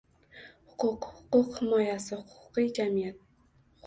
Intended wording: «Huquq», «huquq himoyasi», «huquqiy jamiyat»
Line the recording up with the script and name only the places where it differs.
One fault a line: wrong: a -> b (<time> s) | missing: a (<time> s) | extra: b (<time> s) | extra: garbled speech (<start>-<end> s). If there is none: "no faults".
no faults